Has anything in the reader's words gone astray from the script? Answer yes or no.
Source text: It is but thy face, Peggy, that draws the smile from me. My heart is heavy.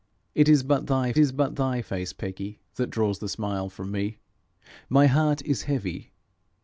yes